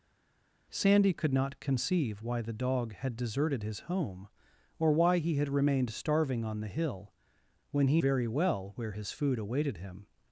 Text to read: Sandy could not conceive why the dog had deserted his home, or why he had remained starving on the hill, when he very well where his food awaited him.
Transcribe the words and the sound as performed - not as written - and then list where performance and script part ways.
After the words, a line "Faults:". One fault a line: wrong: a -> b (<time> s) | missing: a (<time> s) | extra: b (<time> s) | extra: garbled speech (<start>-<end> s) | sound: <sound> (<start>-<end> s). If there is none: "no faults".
Sandy could not conceive why the dog had deserted his home, or why he had remained starving on the hill, when he very well where his food awaited him.
Faults:
no faults